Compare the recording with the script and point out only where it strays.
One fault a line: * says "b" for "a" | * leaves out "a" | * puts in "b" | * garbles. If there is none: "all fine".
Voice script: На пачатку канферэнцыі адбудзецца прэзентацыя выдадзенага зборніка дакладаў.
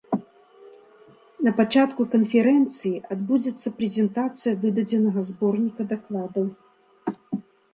all fine